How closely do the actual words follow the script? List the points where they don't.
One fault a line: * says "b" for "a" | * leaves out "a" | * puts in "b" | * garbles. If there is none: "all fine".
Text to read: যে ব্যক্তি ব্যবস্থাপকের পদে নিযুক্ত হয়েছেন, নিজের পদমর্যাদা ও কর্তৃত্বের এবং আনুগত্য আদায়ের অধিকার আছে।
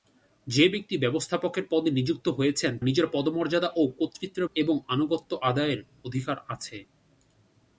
all fine